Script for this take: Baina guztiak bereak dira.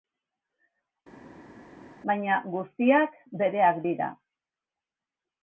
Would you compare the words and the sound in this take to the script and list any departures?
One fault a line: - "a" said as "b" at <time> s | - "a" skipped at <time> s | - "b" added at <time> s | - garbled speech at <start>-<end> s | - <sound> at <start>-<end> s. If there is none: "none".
none